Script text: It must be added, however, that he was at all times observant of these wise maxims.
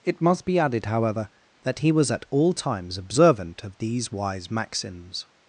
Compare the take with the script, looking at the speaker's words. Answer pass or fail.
pass